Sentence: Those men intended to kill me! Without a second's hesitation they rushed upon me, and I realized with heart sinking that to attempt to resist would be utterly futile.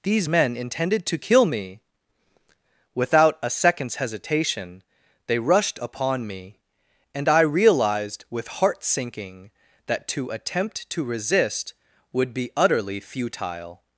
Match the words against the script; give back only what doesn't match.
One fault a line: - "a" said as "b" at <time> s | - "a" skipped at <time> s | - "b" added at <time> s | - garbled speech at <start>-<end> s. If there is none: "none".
- "Those" said as "These" at 0.0 s